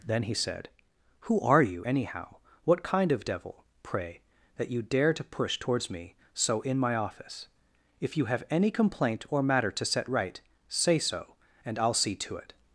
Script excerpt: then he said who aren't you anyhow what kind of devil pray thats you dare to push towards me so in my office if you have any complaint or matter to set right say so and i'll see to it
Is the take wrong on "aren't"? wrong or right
wrong